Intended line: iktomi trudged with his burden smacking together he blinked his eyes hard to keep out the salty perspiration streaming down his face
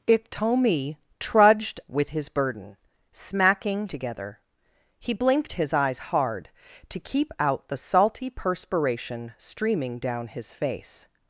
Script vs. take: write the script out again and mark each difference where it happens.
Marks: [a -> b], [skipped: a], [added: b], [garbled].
iktomi trudged with his burden smacking together he blinked his eyes hard to keep out the salty perspiration streaming down his face